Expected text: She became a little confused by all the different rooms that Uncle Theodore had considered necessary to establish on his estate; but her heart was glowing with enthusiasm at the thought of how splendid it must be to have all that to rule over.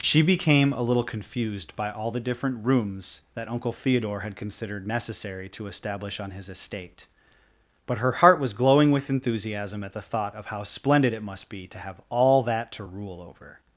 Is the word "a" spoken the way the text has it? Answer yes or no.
yes